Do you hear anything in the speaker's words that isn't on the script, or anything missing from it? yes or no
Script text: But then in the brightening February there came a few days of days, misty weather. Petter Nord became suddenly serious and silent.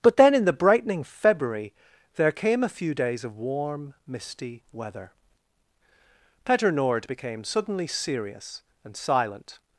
yes